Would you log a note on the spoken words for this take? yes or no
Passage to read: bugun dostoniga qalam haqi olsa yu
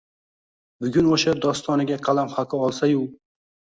yes